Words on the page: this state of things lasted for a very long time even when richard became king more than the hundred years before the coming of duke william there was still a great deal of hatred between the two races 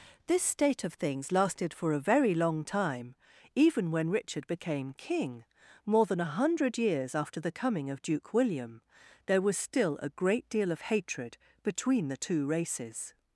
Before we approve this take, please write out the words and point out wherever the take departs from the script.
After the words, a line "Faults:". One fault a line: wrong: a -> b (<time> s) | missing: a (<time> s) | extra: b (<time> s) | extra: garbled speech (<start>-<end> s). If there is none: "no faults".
this state of things lasted for a very long time even when richard became king more than a hundred years after the coming of duke william there was still a great deal of hatred between the two races
Faults:
wrong: the -> a (6.2 s)
wrong: before -> after (7.2 s)